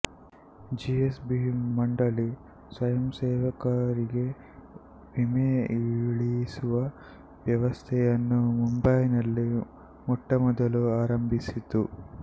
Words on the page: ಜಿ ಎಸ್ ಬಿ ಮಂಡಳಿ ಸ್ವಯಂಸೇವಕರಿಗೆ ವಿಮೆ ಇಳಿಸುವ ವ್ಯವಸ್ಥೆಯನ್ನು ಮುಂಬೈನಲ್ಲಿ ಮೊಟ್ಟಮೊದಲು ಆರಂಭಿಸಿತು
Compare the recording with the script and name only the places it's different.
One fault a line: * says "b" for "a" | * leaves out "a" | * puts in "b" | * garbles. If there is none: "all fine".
all fine